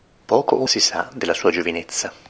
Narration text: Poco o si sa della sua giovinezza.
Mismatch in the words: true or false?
false